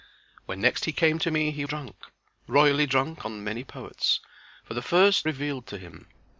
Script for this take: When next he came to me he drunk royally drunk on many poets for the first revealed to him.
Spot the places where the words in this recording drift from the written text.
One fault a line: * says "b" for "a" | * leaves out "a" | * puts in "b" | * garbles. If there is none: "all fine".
all fine